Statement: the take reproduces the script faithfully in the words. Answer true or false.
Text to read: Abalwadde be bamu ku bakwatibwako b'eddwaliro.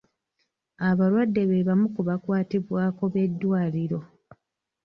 true